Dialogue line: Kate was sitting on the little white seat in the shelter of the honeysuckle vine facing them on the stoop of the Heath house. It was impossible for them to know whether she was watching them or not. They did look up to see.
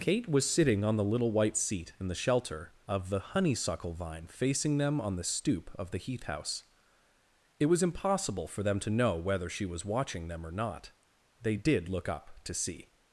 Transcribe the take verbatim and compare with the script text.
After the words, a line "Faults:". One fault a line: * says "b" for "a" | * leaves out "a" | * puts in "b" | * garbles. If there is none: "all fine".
Kate was sitting on the little white seat in the shelter of the honeysuckle vine facing them on the stoop of the Heath house. It was impossible for them to know whether she was watching them or not. They did look up to see.
Faults:
all fine